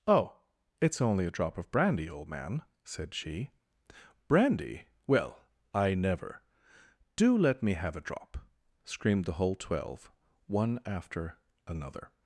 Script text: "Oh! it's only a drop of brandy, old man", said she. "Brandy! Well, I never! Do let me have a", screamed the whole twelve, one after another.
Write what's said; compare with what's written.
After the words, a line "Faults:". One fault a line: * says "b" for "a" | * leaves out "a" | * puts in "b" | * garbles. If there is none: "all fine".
"Oh! it's only a drop of brandy, old man", said she. "Brandy! Well, I never! Do let me have a drop", screamed the whole twelve, one after another.
Faults:
* puts in "drop"